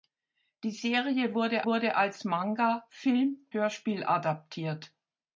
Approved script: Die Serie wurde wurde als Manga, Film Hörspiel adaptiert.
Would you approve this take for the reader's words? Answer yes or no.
yes